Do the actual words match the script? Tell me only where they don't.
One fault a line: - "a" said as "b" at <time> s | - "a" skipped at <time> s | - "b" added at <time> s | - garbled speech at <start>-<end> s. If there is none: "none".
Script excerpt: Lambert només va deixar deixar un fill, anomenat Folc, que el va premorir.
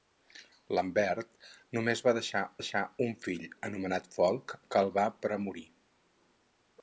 none